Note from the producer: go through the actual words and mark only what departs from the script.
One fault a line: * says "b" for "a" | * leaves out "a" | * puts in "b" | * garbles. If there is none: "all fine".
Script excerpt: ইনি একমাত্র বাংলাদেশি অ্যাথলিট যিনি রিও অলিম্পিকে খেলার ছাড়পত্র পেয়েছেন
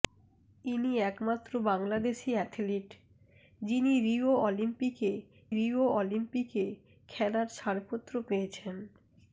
* puts in "রিও অলিম্পিকে"